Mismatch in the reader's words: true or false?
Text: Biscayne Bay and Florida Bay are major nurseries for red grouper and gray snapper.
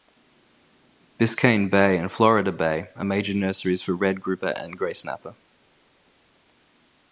false